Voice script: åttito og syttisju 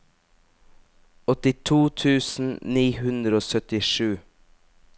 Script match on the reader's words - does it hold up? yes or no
no